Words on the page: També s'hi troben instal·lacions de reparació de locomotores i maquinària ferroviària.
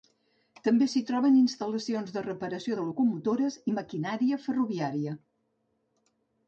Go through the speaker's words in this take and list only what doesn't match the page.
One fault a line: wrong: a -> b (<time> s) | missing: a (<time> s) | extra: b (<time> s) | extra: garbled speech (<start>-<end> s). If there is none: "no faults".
no faults